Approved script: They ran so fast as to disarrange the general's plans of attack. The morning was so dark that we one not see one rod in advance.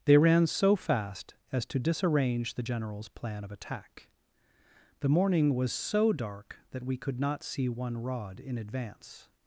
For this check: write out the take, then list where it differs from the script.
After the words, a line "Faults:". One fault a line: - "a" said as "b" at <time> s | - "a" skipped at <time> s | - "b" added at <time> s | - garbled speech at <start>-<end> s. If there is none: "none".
They ran so fast as to disarrange the general's plan of attack. The morning was so dark that we could not see one rod in advance.
Faults:
- "plans" said as "plan" at 3.1 s
- "one" said as "could" at 7.0 s